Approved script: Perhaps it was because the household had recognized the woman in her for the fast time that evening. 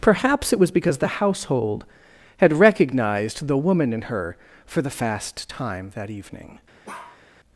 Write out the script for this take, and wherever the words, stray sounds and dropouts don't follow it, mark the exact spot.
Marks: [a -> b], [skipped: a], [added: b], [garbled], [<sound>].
Perhaps it was because the household had recognized the woman in her for the fast time that evening. [bark]